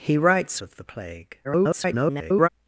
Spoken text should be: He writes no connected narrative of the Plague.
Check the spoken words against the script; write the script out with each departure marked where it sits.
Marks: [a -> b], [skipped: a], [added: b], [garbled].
He writes [skipped: no connected narrative] of the Plague. [garbled]